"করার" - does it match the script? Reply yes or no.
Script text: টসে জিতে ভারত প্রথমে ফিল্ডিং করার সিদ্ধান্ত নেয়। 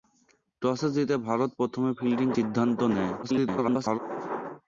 no